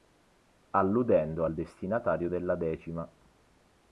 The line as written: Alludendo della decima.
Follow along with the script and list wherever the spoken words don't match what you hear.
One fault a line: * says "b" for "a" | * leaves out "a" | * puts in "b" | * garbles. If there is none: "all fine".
* puts in "al destinatario"